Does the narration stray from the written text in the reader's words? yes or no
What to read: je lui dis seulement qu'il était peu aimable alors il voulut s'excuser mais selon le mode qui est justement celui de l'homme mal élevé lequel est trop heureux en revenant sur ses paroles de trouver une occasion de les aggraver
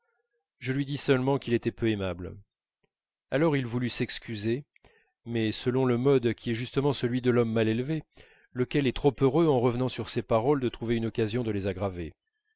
no